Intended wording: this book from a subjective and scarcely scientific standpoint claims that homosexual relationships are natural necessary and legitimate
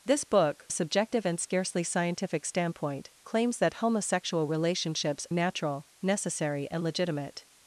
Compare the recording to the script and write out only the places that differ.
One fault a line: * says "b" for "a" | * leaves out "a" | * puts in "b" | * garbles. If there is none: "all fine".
* leaves out "from"
* leaves out "are"